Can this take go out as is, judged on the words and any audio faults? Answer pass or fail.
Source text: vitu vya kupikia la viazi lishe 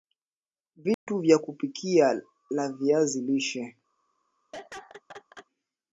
fail